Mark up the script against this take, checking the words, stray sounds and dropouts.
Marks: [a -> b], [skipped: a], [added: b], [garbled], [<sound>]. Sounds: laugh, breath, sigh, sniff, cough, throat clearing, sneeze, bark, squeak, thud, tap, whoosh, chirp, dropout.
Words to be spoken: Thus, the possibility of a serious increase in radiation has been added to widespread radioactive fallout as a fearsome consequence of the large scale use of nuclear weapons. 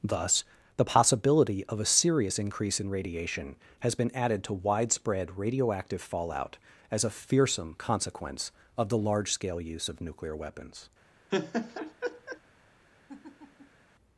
Thus, the possibility of a serious increase in radiation has been added to widespread radioactive fallout as a fearsome consequence of the large scale use of nuclear weapons. [laugh] [laugh]